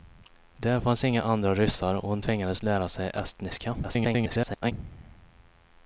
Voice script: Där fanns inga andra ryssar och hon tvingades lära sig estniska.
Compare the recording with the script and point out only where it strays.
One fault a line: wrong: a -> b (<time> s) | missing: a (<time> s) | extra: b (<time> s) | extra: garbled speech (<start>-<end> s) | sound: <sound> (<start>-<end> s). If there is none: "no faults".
extra: garbled speech (3.8-4.7 s)